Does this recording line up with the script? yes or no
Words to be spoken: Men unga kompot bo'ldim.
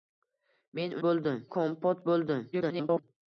no